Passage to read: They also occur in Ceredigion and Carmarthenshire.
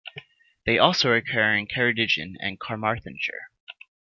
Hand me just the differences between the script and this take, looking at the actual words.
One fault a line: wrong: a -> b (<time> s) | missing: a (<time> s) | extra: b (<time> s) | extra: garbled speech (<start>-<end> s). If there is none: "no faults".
no faults